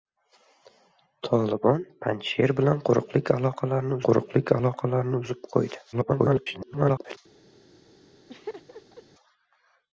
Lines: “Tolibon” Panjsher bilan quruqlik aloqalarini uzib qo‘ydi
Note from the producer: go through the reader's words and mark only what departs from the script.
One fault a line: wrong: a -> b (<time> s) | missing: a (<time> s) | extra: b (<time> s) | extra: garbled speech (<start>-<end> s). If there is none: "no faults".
extra: quruqlik aloqalarini (4.1 s)
extra: garbled speech (5.9-7.2 s)